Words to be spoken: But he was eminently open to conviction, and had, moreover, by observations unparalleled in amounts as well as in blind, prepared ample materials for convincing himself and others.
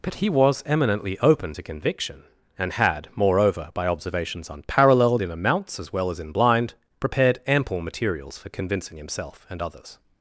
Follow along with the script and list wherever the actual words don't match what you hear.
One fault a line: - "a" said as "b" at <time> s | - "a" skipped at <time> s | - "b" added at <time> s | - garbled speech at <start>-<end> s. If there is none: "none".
none